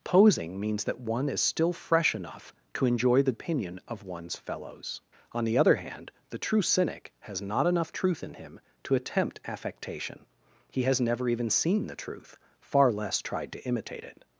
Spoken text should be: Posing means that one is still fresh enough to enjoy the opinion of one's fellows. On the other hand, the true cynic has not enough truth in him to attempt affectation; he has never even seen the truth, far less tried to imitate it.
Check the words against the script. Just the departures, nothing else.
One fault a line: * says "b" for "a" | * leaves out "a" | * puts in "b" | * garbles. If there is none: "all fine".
all fine